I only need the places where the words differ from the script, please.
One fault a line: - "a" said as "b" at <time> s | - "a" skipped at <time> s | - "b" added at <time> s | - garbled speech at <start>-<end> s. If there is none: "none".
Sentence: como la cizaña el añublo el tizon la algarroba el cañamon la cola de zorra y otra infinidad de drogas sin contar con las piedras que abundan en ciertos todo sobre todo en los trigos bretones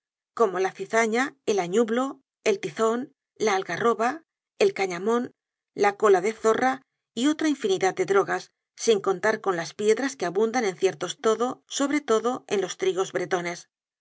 none